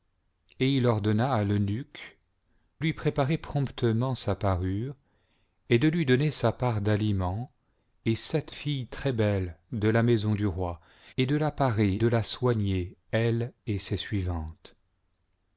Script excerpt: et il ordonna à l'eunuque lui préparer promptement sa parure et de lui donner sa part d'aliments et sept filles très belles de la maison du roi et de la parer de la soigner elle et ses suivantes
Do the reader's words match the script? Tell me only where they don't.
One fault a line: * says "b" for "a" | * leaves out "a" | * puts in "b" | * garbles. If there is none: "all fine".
all fine